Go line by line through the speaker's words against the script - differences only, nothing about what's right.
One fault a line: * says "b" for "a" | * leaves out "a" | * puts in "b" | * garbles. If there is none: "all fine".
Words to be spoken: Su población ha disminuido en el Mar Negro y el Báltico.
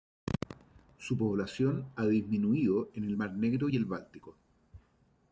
all fine